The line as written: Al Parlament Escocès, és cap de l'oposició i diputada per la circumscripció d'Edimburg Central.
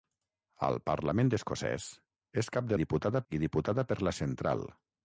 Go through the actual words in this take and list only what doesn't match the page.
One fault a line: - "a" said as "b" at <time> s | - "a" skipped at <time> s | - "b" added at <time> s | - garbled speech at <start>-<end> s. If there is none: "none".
- "l'oposició" said as "diputada" at 2.8 s
- "circumscripció d'Edimburg" skipped at 4.1 s